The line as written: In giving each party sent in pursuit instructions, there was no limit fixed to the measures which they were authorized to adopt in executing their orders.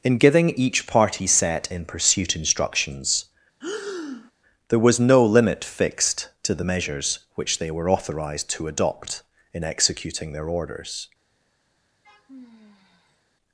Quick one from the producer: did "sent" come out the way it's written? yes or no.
no